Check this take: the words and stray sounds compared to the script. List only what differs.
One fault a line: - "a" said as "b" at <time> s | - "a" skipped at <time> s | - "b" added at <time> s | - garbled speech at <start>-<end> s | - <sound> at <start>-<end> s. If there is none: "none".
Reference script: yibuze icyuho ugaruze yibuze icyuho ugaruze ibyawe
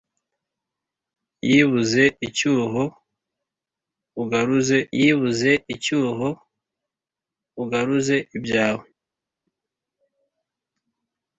none